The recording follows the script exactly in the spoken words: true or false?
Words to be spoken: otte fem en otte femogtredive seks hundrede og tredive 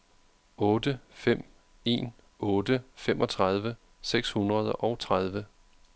true